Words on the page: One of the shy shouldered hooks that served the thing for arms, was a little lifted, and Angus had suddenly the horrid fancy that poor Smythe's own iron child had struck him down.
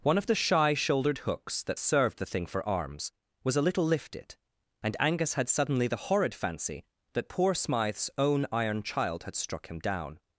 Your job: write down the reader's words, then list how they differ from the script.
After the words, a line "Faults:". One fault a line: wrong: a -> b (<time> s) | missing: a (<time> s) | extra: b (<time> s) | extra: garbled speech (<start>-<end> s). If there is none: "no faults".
One of the shy shouldered hooks that served the thing for arms, was a little lifted, and Angus had suddenly the horrid fancy that poor Smythe's own iron child had struck him down.
Faults:
no faults